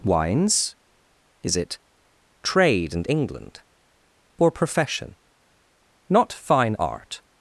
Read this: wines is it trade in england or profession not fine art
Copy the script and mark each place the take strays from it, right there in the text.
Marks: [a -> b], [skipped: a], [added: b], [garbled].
wines is it trade [in -> and] england or profession not fine art